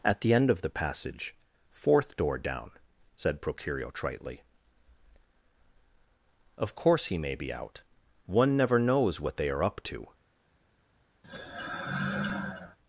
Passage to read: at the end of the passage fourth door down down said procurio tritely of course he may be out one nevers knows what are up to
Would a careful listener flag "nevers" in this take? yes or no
yes